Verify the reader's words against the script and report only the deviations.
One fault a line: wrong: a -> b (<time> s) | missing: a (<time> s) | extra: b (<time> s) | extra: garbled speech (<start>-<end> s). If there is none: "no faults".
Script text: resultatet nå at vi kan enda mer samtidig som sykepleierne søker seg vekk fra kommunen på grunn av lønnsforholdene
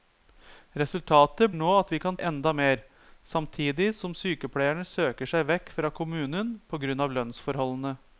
no faults